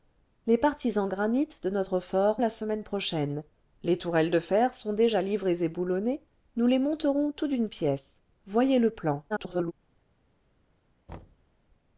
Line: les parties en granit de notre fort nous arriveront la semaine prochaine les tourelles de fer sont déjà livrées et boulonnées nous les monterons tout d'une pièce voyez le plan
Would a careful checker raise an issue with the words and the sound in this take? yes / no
yes